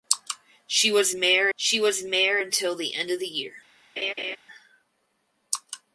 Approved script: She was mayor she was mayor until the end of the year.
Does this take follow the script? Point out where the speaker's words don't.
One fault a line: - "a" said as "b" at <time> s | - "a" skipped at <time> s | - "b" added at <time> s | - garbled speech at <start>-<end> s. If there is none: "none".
none